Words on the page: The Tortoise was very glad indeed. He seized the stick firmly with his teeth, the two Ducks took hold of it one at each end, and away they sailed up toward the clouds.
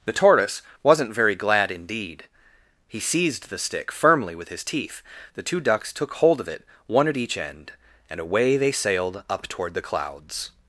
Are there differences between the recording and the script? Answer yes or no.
yes